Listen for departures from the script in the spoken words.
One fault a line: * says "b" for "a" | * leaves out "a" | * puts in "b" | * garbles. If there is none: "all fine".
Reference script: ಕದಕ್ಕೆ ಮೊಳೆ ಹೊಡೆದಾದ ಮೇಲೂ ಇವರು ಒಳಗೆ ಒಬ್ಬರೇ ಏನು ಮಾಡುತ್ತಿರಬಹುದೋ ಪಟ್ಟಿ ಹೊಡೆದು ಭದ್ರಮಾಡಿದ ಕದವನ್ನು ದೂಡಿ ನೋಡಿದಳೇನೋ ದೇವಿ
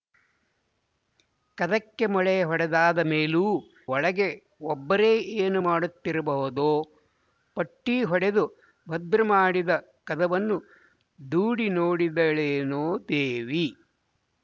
* leaves out "ಇವರು"